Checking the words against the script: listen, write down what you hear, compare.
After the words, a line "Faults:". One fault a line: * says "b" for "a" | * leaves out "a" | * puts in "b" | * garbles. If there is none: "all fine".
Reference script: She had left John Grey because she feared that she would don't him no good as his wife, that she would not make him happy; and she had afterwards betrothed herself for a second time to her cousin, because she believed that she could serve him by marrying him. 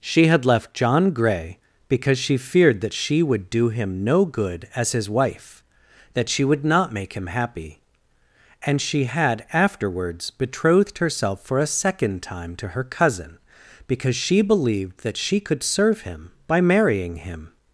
She had left John Grey because she feared that she would do him no good as his wife, that she would not make him happy; and she had afterwards betrothed herself for a second time to her cousin, because she believed that she could serve him by marrying him.
Faults:
* says "do" for "don't"